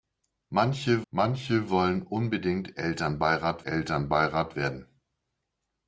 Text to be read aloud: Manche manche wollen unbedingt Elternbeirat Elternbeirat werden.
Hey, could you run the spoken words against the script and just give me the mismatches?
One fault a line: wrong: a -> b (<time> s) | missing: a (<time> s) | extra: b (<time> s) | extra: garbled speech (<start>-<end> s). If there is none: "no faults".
no faults